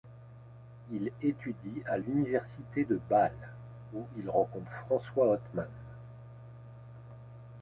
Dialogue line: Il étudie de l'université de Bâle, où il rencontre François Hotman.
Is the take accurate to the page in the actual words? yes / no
no